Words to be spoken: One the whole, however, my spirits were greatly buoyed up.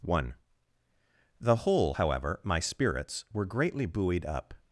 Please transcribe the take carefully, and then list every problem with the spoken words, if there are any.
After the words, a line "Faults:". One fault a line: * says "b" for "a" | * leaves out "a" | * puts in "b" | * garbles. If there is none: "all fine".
One the whole, however, my spirits were greatly buoyed up.
Faults:
all fine